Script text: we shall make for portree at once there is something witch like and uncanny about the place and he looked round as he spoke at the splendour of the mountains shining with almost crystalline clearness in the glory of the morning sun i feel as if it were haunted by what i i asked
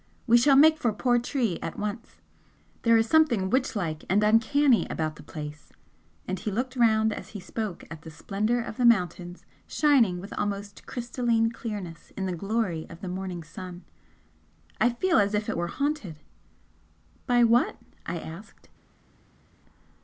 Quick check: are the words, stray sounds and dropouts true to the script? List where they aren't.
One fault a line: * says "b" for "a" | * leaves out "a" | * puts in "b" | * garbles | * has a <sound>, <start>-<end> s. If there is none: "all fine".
* leaves out "i"